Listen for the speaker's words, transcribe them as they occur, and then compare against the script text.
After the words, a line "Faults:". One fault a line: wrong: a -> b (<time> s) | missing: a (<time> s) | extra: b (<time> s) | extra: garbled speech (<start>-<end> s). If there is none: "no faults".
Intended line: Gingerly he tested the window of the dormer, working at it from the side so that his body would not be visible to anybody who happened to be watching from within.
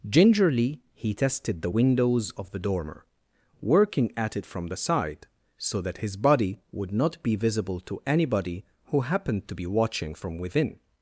Gingerly he tested the windows of the dormer, working at it from the side so that his body would not be visible to anybody who happened to be watching from within.
Faults:
wrong: window -> windows (1.7 s)